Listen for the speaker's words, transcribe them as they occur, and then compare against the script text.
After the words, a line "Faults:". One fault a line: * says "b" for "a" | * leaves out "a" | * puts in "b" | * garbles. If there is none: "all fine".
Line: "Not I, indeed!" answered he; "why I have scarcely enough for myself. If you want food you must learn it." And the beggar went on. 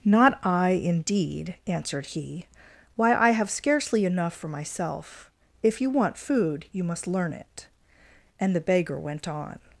"Not I, indeed!" answered he; "why I have scarcely enough for myself. If you want food you must learn it." And the beggar went on.
Faults:
all fine